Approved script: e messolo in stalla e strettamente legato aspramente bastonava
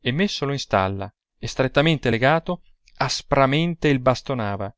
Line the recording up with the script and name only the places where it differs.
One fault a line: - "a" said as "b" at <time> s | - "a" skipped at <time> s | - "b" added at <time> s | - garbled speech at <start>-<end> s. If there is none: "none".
- "il" added at 3.9 s